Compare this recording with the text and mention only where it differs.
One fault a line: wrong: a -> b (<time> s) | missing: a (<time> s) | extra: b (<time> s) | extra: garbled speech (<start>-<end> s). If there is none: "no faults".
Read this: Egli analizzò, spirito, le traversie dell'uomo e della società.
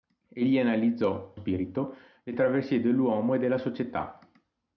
no faults